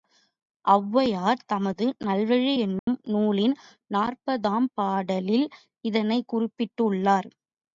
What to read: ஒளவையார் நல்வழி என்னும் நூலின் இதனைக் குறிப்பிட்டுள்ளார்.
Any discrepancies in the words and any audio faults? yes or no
yes